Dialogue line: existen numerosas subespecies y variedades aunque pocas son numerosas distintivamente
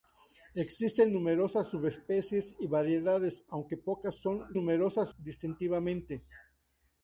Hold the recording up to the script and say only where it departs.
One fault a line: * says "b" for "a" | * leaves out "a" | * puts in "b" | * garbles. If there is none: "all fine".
all fine